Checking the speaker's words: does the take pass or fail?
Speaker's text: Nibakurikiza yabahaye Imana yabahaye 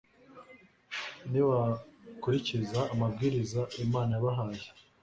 fail